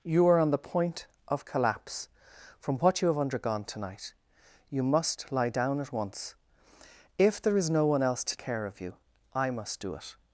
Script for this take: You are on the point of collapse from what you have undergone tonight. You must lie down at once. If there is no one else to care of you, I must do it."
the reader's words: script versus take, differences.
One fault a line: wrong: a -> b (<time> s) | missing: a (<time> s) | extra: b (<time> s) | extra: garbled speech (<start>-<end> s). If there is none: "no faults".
no faults